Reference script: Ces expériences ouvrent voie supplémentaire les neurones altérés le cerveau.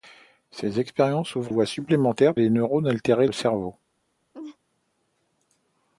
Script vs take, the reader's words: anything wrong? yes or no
no